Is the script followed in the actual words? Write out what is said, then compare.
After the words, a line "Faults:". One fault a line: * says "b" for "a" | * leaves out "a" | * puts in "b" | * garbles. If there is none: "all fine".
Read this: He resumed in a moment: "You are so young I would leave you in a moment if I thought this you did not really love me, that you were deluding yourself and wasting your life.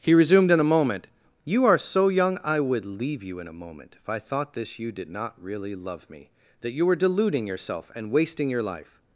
He resumed in a moment: "You are so young I would leave you in a moment if I thought this you did not really love me, that you were deluding yourself and wasting your life.
Faults:
all fine